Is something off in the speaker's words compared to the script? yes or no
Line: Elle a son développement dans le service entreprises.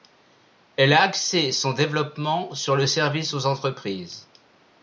yes